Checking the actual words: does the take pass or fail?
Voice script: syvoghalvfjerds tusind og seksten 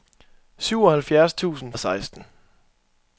pass